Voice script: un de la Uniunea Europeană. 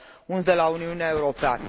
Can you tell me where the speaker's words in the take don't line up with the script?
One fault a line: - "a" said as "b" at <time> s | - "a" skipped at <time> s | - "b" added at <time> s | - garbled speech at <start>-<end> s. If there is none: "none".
none